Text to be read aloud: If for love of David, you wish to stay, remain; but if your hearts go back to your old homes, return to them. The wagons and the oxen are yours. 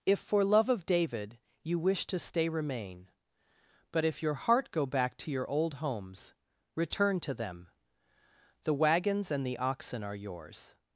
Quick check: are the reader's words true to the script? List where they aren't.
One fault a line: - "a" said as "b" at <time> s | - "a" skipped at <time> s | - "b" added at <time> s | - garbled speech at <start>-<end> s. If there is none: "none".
- "hearts" said as "heart" at 4.3 s